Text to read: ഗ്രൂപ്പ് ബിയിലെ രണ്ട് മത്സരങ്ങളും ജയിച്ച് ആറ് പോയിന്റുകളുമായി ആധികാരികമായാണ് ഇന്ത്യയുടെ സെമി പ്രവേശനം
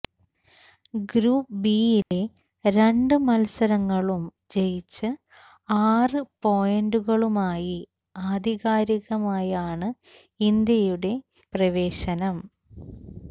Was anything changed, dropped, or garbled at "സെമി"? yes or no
yes